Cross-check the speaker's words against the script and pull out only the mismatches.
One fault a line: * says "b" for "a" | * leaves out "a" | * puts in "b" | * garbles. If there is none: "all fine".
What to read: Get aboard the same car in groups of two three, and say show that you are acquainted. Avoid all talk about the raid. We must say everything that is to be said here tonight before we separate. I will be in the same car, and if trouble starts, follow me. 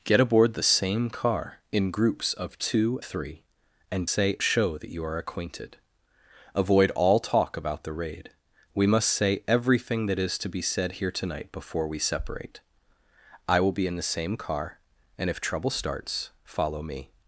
all fine